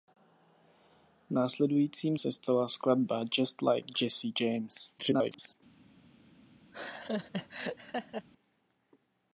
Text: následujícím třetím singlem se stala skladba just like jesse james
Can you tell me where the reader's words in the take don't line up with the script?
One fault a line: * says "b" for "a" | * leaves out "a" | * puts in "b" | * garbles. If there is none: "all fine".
* leaves out "třetím singlem"
* garbles